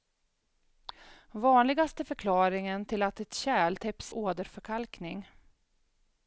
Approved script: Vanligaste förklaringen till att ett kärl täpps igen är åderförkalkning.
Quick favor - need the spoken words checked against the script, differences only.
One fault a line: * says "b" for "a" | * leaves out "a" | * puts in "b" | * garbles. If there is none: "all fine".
* leaves out "igen är"